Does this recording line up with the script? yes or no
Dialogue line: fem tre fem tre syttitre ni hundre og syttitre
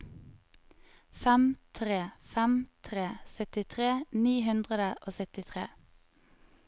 yes